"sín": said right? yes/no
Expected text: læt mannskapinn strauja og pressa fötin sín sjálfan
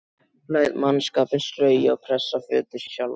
no